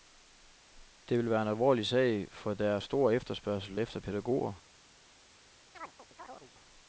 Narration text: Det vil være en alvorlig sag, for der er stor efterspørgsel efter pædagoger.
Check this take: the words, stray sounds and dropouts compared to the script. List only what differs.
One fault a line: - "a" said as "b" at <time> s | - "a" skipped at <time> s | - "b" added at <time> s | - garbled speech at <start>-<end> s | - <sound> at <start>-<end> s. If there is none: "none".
- chirp at 5.7-6.5 s